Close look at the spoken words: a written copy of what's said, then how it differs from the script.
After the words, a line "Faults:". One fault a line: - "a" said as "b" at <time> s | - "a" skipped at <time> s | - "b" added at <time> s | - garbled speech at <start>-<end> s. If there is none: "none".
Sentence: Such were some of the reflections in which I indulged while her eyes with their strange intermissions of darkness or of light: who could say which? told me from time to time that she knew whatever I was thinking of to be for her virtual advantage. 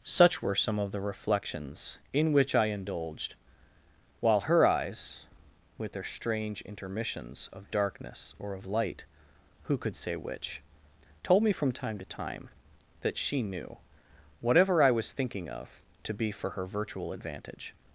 Such were some of the reflections in which I indulged while her eyes with their strange intermissions of darkness or of light: who could say which? told me from time to time that she knew whatever I was thinking of to be for her virtual advantage.
Faults:
none